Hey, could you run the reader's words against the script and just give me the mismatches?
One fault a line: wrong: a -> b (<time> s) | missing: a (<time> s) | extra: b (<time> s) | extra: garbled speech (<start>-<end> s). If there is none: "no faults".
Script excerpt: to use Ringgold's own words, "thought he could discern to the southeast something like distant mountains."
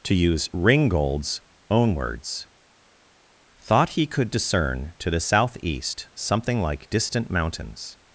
no faults